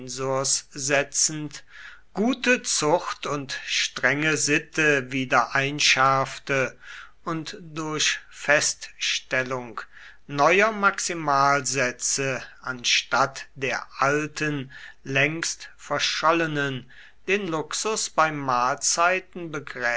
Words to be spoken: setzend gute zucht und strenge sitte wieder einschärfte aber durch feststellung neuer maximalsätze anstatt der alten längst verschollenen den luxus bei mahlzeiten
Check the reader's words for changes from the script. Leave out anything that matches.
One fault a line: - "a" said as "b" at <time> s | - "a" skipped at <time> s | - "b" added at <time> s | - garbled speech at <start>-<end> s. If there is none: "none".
- "aber" said as "und" at 7.2 s